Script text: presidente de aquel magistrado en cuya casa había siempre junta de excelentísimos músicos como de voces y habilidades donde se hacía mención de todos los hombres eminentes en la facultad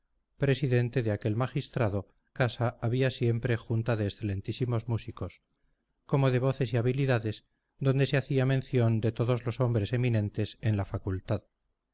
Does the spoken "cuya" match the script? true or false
false